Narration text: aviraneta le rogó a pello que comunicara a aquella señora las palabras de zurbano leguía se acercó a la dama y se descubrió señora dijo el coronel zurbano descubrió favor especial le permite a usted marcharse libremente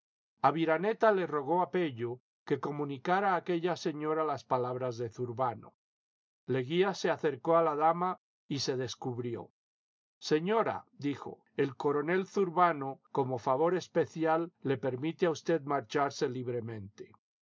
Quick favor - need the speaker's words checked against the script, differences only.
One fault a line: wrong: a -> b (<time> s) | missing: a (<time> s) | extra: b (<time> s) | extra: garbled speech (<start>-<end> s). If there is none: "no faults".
wrong: descubrió -> como (13.1 s)